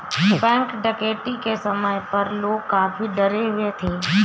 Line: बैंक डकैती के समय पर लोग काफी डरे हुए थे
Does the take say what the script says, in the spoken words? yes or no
yes